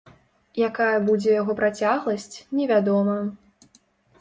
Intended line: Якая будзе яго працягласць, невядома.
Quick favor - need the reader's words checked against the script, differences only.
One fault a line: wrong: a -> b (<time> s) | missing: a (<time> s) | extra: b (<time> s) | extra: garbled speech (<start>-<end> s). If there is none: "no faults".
no faults